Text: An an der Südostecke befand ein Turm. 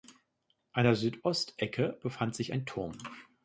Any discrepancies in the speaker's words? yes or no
yes